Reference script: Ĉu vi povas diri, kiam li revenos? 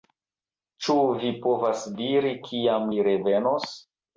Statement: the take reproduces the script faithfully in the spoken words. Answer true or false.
true